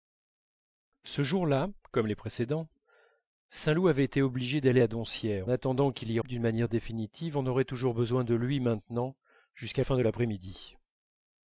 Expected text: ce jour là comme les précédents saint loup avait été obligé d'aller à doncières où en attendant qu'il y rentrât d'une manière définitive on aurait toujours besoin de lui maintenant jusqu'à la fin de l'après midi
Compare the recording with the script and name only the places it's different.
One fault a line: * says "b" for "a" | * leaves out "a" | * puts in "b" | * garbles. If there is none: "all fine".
* leaves out "où en"
* leaves out "rentrât"
* leaves out "la"